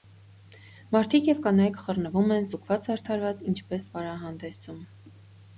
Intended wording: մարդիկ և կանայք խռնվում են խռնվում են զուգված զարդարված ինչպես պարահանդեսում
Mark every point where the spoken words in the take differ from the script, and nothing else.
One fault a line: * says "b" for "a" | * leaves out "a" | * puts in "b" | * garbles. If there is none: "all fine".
* leaves out "խռնվում են"